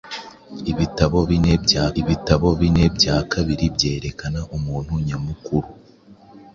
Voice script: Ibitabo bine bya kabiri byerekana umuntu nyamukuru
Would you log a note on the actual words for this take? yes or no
yes